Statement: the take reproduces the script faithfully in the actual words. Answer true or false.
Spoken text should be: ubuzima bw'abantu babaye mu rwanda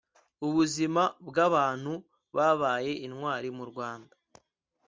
false